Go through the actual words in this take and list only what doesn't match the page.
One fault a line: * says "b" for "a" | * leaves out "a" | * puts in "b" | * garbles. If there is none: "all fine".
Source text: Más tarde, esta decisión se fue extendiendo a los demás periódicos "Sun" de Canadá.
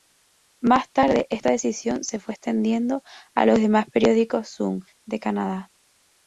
all fine